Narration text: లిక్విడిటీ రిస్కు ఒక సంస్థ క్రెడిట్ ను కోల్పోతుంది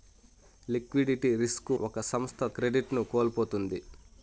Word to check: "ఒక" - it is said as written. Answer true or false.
true